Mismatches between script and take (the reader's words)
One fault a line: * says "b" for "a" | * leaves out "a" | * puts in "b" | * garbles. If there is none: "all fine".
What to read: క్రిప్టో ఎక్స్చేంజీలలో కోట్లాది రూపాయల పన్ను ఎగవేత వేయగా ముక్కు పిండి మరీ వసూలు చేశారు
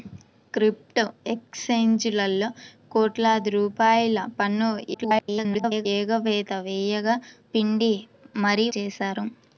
* garbles
* leaves out "ముక్కు"
* leaves out "వసూలు"